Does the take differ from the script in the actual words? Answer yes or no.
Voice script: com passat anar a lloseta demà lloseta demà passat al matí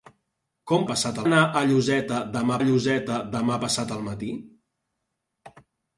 no